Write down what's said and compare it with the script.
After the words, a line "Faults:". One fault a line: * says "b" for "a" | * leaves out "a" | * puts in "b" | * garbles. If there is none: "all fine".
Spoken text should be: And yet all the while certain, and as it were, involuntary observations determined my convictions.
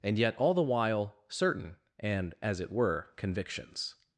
And yet all the while certain, and as it were, convictions.
Faults:
* leaves out "involuntary observations determined my"